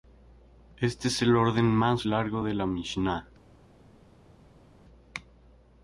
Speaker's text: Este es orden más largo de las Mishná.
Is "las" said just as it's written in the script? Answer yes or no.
no